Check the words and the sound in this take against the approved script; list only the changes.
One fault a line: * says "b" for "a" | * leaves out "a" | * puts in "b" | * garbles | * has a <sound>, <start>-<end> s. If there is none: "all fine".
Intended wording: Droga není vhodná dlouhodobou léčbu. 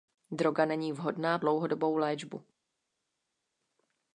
all fine